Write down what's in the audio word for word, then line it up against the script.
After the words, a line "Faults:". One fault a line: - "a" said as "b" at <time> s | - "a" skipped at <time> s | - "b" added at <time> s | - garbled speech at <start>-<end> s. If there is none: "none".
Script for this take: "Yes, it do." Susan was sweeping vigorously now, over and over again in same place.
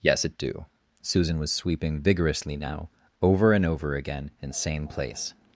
"Yes, it do." Susan was sweeping vigorously now, over and over again in same place.
Faults:
none